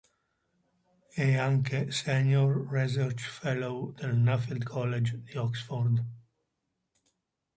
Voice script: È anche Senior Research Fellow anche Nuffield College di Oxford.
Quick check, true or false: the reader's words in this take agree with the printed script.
false